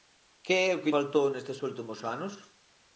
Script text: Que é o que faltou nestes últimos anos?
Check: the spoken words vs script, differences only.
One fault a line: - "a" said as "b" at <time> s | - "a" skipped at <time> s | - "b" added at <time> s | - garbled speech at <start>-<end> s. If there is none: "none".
none